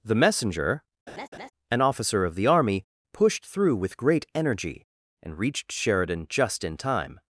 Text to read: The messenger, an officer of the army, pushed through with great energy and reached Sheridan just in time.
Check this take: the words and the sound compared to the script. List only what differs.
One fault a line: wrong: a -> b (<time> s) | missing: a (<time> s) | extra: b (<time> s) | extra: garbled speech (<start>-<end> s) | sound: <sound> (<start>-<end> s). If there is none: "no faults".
sound: laugh (1.1-1.5 s)